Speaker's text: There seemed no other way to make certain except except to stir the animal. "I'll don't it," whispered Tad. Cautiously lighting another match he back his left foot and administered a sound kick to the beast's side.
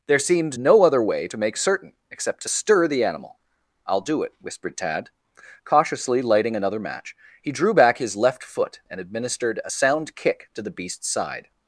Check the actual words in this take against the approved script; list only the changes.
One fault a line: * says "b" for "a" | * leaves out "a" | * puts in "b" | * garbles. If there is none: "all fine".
* leaves out "except"
* says "do" for "don't"
* puts in "drew"